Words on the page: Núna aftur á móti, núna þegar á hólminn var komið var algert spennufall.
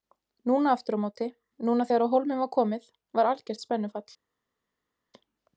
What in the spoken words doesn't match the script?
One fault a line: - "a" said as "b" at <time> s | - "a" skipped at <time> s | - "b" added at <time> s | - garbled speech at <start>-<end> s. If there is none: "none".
none